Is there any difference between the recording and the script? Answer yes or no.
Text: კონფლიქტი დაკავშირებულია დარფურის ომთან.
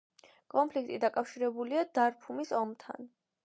no